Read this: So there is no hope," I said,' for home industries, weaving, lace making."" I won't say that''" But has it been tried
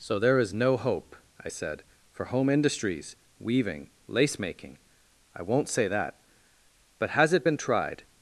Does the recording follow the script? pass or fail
pass